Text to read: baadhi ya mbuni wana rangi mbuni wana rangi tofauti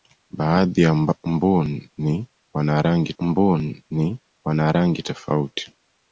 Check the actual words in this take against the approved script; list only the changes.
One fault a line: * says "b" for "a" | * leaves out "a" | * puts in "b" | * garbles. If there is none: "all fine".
all fine